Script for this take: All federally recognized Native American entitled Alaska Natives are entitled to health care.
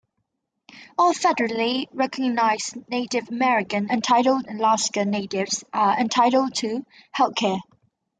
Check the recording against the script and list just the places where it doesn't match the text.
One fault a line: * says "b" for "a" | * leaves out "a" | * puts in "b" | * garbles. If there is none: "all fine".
all fine